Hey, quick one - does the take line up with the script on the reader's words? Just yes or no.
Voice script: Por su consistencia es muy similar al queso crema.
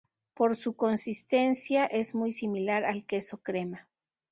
yes